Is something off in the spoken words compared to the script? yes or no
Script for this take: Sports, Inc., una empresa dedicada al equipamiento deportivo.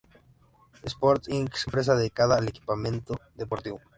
yes